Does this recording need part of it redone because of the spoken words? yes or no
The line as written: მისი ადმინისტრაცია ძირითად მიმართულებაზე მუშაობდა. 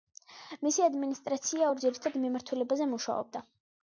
yes